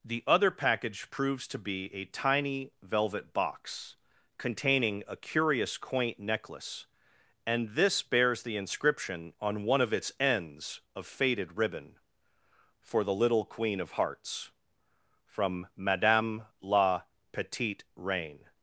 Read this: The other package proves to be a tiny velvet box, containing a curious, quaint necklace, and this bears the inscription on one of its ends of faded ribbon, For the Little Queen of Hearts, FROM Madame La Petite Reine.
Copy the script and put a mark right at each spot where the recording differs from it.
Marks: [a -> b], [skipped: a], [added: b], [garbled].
The other package proves to be a tiny velvet box, containing a curious, quaint necklace, and this bears the inscription on one of its ends of faded ribbon, For the Little Queen of Hearts, FROM Madame La Petite Reine.